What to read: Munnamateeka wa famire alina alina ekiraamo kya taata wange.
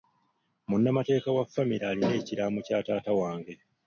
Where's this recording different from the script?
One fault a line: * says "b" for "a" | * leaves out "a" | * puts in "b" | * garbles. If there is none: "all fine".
* leaves out "alina"